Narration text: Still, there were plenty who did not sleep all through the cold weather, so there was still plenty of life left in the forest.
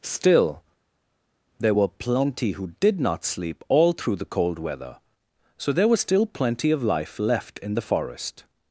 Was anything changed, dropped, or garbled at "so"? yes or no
no